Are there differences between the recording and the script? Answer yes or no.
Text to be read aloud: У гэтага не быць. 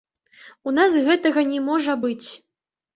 yes